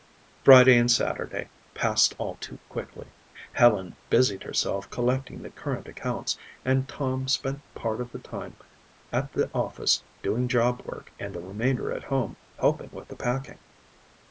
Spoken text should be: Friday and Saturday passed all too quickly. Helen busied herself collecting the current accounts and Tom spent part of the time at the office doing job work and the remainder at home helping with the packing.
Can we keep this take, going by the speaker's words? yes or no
yes